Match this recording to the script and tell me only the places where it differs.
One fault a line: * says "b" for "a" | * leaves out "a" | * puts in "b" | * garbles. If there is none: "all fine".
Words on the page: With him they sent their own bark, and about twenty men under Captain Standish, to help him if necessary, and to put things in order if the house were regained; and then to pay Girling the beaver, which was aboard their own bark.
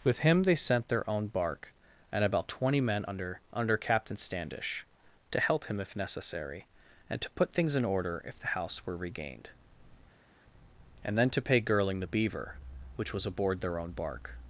* puts in "under"